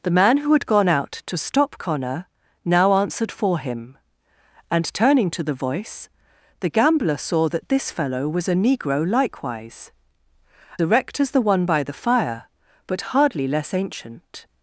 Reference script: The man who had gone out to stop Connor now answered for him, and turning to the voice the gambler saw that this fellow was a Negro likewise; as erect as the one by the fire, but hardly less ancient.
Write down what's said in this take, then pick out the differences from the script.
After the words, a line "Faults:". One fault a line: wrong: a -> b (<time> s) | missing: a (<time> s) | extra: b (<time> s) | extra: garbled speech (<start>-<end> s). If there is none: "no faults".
The man who had gone out to stop Connor now answered for him, and turning to the voice the gambler saw that this fellow was a Negro likewise; erect as the one by the fire, but hardly less ancient.
Faults:
missing: as (9.9 s)